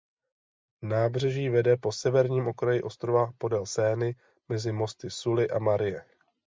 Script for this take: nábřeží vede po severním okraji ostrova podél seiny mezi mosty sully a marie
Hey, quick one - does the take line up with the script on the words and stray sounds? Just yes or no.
yes